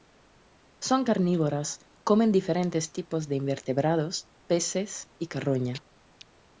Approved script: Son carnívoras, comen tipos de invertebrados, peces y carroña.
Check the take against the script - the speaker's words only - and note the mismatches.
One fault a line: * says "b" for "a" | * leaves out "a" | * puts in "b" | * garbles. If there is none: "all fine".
* puts in "diferentes"